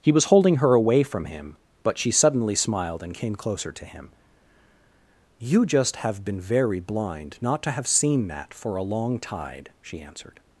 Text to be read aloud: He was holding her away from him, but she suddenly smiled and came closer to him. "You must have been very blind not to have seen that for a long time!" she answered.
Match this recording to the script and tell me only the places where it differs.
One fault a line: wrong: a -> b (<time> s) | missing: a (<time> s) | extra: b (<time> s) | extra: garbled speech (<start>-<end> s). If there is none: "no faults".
wrong: must -> just (5.7 s)
wrong: time -> tide (9.2 s)